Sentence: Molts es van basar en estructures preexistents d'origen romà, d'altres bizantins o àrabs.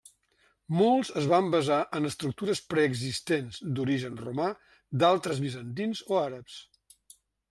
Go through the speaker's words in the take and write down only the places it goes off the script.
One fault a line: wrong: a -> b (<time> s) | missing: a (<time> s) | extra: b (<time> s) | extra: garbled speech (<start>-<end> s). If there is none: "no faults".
no faults